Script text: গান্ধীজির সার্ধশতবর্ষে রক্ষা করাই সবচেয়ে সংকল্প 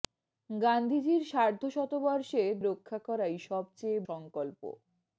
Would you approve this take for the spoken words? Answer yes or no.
yes